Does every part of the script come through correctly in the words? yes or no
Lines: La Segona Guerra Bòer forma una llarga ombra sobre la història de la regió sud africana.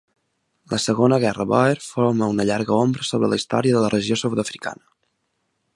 yes